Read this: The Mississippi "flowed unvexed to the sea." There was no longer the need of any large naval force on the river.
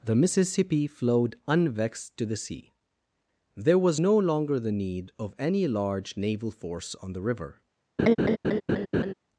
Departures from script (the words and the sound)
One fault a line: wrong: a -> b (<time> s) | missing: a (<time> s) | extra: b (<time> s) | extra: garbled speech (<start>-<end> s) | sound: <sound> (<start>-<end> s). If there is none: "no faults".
sound: laugh (8.0-9.1 s)